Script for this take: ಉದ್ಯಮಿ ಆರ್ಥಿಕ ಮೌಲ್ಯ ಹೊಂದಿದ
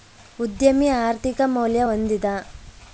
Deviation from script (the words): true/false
false